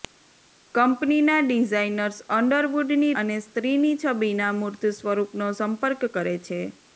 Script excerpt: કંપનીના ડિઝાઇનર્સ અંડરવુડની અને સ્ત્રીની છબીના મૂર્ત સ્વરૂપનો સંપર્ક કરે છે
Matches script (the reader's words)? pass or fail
pass